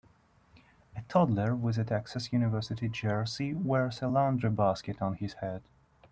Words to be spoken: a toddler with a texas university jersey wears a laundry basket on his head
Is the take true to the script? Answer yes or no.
yes